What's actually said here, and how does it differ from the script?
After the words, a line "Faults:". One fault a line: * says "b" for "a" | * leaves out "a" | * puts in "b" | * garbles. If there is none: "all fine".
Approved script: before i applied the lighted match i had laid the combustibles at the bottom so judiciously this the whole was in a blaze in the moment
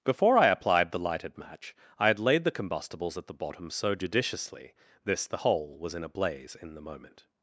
before i applied the lighted match i had laid the combustibles at the bottom so judiciously this the whole was in a blaze in the moment
Faults:
all fine